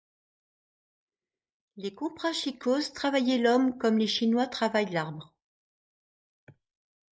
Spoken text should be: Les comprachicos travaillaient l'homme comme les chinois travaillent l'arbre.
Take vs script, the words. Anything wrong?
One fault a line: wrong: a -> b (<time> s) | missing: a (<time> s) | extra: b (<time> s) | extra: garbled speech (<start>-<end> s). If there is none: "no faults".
no faults